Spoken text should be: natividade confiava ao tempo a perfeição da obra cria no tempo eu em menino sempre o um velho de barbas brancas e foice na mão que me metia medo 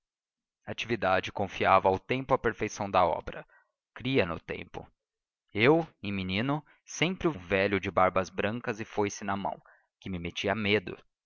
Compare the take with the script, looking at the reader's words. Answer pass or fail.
pass